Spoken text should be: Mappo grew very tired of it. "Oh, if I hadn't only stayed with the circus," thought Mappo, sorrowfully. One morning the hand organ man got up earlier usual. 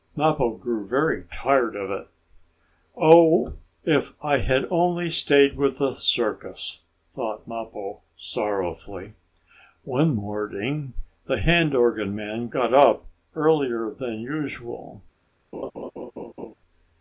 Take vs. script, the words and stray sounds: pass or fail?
fail